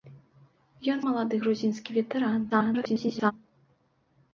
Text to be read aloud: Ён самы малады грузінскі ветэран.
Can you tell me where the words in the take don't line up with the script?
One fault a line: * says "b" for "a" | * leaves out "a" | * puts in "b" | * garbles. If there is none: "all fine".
* leaves out "самы"
* garbles